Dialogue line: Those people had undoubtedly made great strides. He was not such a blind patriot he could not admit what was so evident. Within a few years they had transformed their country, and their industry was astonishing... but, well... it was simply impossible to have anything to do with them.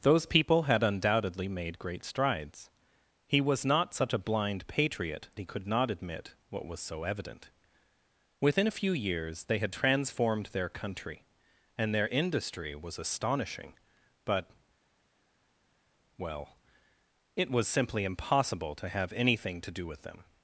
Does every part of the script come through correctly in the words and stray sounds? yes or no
yes